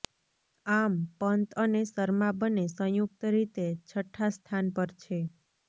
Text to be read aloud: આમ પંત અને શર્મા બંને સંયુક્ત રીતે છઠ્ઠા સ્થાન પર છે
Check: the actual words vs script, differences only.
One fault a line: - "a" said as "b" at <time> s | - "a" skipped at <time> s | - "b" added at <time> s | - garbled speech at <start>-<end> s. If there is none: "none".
none